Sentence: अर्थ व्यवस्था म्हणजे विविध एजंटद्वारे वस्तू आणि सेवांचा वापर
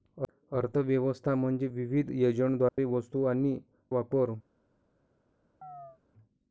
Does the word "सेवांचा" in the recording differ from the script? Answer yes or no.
yes